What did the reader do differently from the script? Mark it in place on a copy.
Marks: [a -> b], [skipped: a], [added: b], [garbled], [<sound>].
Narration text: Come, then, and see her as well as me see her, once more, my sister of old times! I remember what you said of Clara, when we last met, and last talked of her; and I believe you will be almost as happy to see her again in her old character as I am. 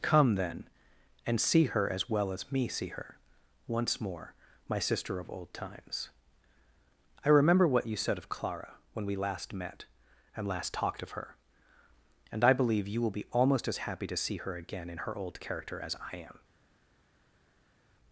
Come, then, and see her as well as me see her, once more, my sister of old times! I remember what you said of Clara, when we last met, and last talked of her; and I believe you will be almost as happy to see her again in her old character as I am.